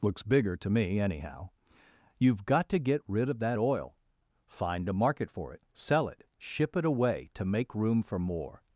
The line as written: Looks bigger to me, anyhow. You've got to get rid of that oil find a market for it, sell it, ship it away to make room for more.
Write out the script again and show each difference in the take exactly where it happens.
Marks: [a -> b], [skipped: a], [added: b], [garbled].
Looks bigger to me, anyhow. You've got to get rid of that oil find a market for it, sell it, ship it away to make room for more.